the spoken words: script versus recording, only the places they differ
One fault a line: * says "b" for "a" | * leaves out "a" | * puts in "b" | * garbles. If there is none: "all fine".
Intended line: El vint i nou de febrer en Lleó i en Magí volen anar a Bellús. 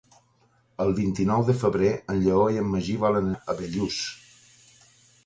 * leaves out "anar"